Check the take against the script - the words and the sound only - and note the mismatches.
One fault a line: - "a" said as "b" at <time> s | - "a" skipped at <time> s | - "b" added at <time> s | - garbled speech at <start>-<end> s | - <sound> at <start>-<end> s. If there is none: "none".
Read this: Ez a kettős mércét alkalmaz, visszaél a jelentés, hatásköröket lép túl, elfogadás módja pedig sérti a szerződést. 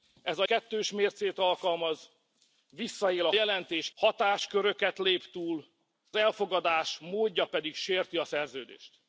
none